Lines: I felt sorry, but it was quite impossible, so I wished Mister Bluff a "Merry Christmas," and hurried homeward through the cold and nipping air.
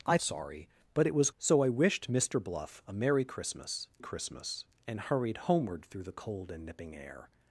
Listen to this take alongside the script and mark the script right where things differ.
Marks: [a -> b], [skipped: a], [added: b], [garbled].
I [skipped: felt] sorry, but it was [skipped: quite impossible,] so I wished Mister Bluff a "Merry Christmas," [added: Christmas] and hurried homeward through the cold and nipping air.